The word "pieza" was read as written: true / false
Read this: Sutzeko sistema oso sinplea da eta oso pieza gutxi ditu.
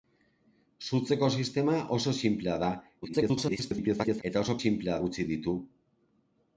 false